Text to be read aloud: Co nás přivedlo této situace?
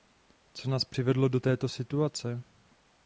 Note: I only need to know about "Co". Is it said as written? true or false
true